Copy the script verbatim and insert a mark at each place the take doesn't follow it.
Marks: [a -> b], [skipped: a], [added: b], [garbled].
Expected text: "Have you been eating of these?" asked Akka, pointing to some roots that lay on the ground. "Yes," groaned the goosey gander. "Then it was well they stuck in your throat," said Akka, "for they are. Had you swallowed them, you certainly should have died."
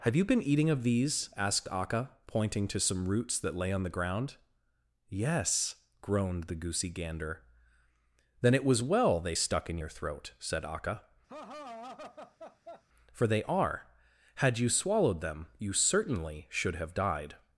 "Have you been eating of these?" asked Akka, pointing to some roots that lay on the ground. "Yes," groaned the goosey gander. "Then it was well they stuck in your throat," said Akka, "for they are. Had you swallowed them, you certainly should have died."